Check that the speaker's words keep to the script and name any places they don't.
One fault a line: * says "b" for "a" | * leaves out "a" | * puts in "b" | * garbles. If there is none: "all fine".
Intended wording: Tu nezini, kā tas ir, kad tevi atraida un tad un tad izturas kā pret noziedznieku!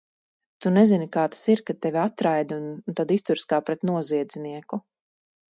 * leaves out "un tad"